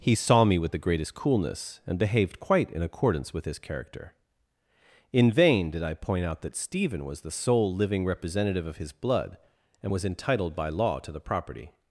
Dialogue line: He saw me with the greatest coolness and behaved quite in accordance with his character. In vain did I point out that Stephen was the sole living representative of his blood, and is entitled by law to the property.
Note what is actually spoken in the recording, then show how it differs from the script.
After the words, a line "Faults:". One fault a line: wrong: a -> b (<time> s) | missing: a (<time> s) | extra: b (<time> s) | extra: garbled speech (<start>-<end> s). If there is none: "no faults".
He saw me with the greatest coolness and behaved quite in accordance with his character. In vain did I point out that Stephen was the sole living representative of his blood, and was entitled by law to the property.
Faults:
wrong: is -> was (9.9 s)